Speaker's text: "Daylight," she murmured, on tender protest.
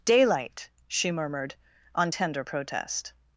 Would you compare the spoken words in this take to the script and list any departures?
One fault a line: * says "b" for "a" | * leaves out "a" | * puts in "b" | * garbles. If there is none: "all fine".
all fine